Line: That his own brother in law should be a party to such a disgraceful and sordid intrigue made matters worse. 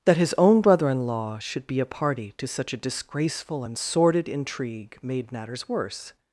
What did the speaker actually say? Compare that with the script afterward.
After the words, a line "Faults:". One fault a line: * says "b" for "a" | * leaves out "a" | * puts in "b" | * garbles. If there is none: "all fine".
That his own brother in law should be a party to such a disgraceful and sordid intrigue made matters worse.
Faults:
all fine